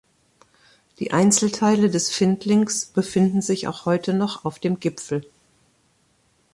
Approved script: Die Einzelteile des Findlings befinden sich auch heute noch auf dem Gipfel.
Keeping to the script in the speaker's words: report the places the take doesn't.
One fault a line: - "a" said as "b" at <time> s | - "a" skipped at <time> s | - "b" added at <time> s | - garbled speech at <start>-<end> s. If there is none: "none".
none